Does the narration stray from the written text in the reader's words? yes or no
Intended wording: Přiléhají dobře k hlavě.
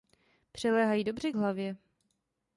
no